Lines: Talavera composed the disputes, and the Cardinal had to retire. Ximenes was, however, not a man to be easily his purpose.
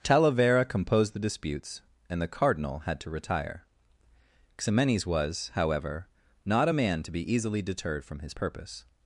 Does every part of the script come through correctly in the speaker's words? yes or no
no